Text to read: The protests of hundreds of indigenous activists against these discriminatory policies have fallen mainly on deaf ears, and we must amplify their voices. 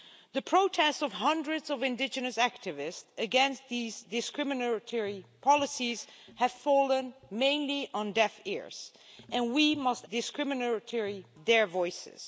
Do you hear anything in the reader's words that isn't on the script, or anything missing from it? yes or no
yes